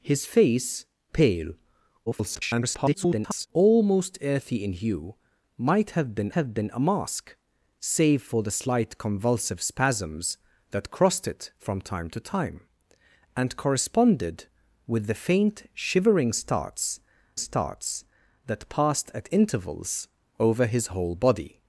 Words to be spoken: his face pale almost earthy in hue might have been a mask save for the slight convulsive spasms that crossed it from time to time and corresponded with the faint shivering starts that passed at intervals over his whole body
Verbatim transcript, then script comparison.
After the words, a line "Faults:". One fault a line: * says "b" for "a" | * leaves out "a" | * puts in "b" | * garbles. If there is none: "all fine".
his face pale [garbled] almost earthy in hue might have been have been a mask save for the slight convulsive spasms that crossed it from time to time and corresponded with the faint shivering starts starts that passed at intervals over his whole body
Faults:
* garbles
* puts in "have been"
* puts in "starts"